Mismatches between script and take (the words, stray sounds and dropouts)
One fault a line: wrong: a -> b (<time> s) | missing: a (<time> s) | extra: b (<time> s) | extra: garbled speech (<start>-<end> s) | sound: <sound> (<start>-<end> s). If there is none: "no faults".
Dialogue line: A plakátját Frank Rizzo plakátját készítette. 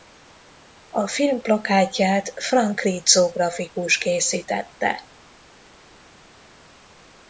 extra: film (1.1 s)
wrong: plakátját -> grafikus (3.3 s)